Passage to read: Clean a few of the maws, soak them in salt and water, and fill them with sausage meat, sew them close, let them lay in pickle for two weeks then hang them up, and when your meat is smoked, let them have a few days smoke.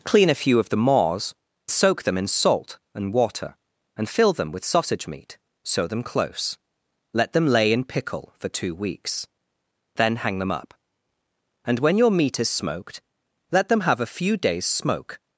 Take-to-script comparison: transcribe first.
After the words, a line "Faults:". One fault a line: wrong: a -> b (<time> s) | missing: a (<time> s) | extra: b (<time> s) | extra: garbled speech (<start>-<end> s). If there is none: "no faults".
Clean a few of the maws, soak them in salt and water, and fill them with sausage meat, sew them close, let them lay in pickle for two weeks then hang them up, and when your meat is smoked, let them have a few days smoke.
Faults:
no faults